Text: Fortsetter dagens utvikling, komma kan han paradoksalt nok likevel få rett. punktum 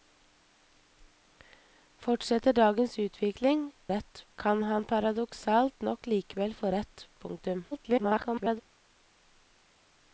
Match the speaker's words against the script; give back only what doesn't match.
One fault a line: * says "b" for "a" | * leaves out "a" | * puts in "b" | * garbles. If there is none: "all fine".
* says "rett" for "komma"
* garbles